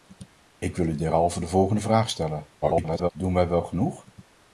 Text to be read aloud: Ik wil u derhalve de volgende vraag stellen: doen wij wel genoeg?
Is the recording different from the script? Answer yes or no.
yes